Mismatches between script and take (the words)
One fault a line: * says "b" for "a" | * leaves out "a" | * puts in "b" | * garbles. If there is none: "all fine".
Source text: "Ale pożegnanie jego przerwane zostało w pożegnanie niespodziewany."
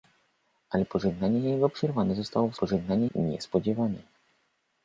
all fine